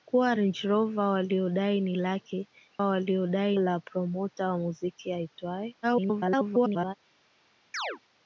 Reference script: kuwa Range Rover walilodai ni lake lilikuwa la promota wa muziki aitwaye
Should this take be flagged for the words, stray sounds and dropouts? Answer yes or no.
yes